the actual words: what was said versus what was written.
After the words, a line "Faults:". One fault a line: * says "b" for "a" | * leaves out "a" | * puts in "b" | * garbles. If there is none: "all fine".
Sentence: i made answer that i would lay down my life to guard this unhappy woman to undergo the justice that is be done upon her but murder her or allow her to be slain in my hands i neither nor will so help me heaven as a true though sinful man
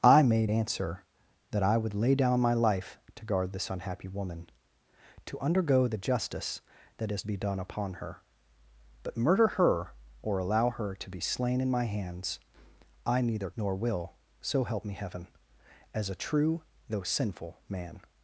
i made answer that i would lay down my life to guard this unhappy woman to undergo the justice that is be done upon her but murder her or allow her to be slain in my hands i neither nor will so help me heaven as a true though sinful man
Faults:
all fine